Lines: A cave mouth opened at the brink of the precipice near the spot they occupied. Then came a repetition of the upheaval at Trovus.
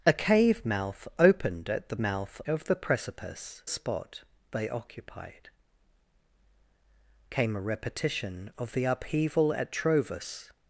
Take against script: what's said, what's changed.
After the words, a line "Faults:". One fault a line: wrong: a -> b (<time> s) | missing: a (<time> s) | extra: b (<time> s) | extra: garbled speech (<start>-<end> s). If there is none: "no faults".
A cave mouth opened at the mouth of the precipice spot they occupied. Came a repetition of the upheaval at Trovus.
Faults:
wrong: brink -> mouth (2.0 s)
missing: near the (3.6 s)
missing: Then (5.5 s)